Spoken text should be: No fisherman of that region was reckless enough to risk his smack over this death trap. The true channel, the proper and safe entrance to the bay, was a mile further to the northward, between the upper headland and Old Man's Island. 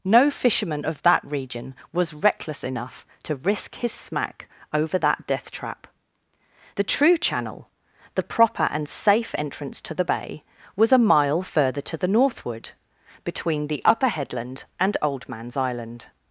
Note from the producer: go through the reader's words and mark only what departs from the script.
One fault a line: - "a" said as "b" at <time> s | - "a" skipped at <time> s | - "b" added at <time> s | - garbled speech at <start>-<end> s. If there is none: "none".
- "this" said as "that" at 5.0 s